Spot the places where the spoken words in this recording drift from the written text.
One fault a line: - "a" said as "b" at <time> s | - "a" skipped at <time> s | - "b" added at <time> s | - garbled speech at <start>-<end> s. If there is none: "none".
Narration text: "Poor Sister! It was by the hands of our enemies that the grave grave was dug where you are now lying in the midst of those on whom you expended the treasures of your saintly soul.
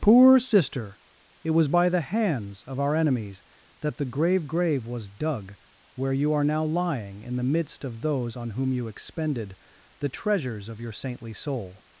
none